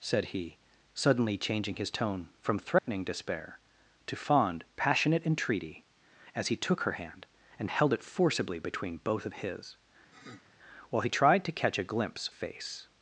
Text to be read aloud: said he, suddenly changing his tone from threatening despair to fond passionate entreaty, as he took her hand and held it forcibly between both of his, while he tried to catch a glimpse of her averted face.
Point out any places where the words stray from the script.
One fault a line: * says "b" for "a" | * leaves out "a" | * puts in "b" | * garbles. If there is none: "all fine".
* leaves out "of her averted"